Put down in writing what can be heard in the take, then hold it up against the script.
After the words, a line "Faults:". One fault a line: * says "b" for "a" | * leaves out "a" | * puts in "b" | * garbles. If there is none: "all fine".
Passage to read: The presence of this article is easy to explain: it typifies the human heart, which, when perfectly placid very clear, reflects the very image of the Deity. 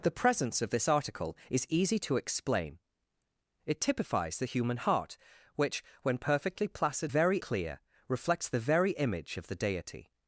The presence of this article is easy to explain: it typifies the human heart, which, when perfectly placid very clear, reflects the very image of the Deity.
Faults:
all fine